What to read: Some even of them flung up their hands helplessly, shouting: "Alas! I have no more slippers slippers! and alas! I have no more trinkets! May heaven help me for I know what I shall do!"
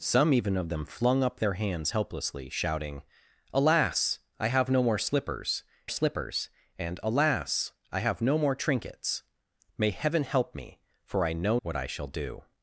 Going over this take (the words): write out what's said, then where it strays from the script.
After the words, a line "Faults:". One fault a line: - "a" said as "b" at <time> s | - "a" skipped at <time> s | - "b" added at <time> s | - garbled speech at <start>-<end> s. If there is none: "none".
Some even of them flung up their hands helplessly, shouting: "Alas! I have no more slippers slippers! and alas! I have no more trinkets! May heaven help me for I know what I shall do!"
Faults:
none